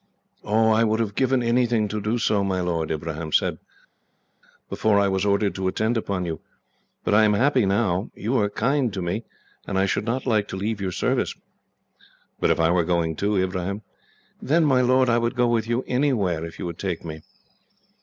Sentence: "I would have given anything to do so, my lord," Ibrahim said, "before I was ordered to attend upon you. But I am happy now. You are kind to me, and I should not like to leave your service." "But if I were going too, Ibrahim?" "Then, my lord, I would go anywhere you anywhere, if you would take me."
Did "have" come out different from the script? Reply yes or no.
no